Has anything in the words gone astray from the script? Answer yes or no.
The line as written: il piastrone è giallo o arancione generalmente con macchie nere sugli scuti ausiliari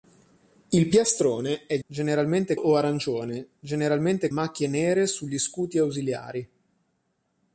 yes